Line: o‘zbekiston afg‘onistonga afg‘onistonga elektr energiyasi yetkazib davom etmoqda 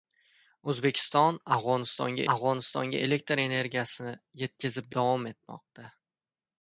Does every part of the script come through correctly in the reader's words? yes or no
yes